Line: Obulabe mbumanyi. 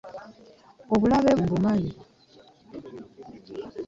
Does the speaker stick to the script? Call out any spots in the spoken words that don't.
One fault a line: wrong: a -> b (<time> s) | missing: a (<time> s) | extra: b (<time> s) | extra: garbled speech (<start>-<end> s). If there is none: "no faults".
no faults